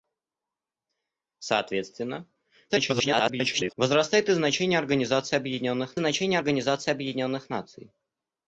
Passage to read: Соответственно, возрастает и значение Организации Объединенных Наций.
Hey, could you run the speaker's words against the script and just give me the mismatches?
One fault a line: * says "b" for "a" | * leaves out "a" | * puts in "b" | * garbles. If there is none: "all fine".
* garbles
* puts in "значение Организации Объединенных"